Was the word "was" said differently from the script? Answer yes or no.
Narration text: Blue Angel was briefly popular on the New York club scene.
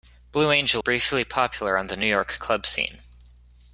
yes